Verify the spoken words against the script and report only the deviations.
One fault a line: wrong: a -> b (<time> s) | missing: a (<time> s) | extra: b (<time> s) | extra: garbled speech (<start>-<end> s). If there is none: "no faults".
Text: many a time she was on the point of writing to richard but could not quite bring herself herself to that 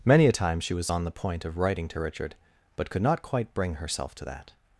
missing: herself (4.1 s)